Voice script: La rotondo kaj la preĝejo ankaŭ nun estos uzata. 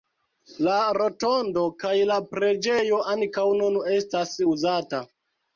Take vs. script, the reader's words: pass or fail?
fail